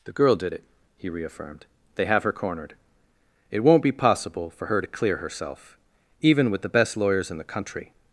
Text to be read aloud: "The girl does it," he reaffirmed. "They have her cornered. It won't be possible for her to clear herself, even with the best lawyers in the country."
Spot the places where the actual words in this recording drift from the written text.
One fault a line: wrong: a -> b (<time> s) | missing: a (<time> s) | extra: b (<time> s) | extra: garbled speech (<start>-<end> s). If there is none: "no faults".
wrong: does -> did (0.3 s)